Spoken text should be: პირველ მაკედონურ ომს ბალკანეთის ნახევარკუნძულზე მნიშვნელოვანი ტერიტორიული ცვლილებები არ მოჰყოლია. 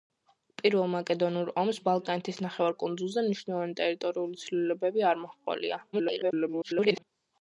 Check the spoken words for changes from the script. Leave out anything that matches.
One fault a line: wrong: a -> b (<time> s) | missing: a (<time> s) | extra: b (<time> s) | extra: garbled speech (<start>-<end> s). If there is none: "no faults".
extra: garbled speech (5.9-7.0 s)